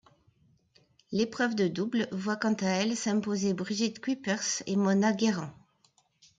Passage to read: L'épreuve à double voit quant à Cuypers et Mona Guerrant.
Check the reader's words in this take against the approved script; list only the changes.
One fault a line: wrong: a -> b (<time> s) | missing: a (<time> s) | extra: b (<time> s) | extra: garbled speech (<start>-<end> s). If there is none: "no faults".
wrong: à -> de (1.5 s)
extra: elle s'imposer Brigitte (2.6 s)